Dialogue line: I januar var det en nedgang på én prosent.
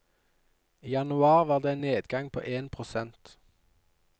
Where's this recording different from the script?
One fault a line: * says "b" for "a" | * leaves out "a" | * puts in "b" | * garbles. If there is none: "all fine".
all fine